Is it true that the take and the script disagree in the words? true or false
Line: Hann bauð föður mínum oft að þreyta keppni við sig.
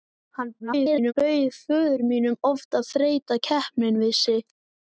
true